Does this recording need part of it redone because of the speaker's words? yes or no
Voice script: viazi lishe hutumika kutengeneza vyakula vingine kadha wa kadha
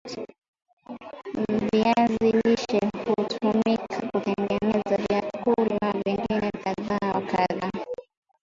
no